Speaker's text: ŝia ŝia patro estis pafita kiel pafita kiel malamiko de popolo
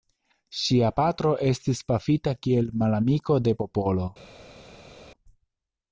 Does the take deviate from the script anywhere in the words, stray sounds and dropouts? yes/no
yes